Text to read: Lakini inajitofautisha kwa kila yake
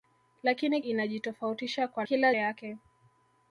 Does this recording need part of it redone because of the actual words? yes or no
no